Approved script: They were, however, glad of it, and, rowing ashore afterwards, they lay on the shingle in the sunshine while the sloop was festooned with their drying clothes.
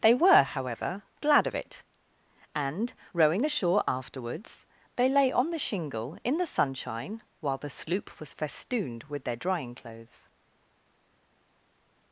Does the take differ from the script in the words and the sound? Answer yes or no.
no